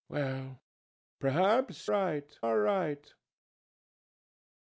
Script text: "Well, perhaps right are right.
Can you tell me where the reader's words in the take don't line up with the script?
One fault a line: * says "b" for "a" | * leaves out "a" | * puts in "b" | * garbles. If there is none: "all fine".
all fine